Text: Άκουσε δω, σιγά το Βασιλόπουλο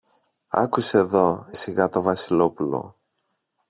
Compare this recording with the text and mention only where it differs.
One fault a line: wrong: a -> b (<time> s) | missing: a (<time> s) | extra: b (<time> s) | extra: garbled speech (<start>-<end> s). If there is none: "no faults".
no faults